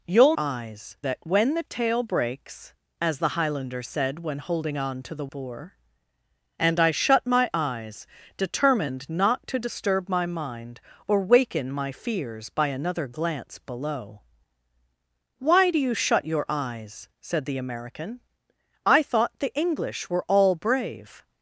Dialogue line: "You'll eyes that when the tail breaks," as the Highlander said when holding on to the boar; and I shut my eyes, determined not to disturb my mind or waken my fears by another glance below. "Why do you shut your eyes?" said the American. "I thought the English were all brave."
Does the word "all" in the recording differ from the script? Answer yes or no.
no